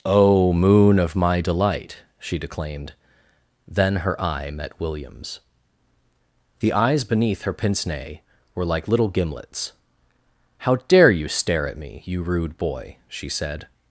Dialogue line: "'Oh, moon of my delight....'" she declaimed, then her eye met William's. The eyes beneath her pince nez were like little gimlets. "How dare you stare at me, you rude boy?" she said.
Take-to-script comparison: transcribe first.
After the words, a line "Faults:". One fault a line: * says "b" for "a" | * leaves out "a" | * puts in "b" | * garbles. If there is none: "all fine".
"'Oh, moon of my delight....'" she declaimed, then her eye met William's. The eyes beneath her pince nez were like little gimlets. "How dare you stare at me, you rude boy?" she said.
Faults:
all fine